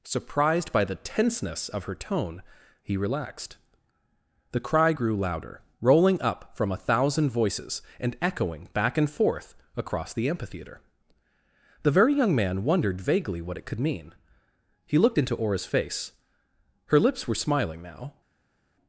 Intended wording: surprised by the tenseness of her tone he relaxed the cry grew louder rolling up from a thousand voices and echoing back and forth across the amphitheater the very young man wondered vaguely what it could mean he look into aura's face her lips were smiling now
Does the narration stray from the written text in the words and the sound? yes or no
yes